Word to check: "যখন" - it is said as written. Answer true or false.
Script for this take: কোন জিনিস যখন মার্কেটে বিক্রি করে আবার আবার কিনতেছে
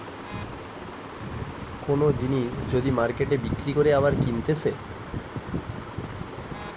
false